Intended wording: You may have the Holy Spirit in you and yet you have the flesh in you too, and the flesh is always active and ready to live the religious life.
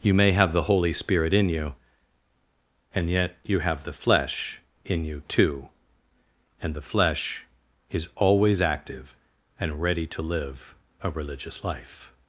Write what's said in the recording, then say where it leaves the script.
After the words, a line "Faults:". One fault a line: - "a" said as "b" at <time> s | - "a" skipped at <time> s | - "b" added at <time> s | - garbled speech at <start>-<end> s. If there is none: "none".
You may have the Holy Spirit in you and yet you have the flesh in you too, and the flesh is always active and ready to live a religious life.
Faults:
- "the" said as "a" at 11.0 s